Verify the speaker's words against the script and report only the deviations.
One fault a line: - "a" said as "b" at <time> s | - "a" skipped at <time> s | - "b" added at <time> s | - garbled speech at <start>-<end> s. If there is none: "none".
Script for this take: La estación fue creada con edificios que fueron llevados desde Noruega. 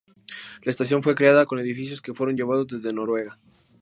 none